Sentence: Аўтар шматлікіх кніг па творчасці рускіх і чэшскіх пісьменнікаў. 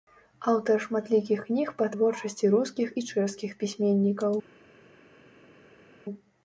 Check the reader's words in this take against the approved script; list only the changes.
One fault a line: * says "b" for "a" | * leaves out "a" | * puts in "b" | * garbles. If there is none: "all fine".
all fine